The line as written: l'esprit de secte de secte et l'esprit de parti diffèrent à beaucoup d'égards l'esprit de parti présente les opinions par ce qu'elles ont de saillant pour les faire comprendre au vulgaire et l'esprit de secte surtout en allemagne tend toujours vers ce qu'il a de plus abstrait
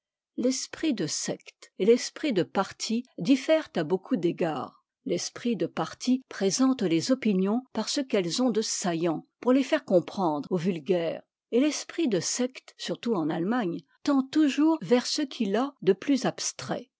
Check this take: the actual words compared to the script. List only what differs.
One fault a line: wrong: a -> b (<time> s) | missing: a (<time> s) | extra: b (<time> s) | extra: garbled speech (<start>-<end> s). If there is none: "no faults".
missing: de secte (1.7 s)